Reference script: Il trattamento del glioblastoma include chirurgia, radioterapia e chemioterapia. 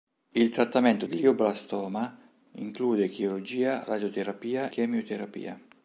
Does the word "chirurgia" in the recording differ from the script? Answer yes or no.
no